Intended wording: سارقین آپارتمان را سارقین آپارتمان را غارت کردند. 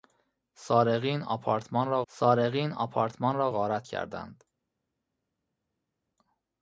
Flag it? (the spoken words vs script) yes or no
no